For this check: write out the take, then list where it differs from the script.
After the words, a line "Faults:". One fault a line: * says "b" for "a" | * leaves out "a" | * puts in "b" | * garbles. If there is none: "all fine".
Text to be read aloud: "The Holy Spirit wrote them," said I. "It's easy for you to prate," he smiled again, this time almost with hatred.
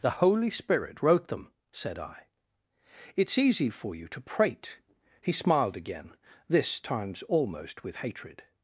"The Holy Spirit wrote them," said I. "It's easy for you to prate," he smiled again, this times almost with hatred.
Faults:
* says "times" for "time"